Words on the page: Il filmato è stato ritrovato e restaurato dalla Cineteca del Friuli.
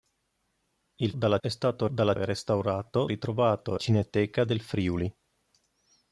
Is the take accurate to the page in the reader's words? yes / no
no